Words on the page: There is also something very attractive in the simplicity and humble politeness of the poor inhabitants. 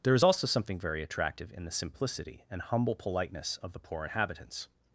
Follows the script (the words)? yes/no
yes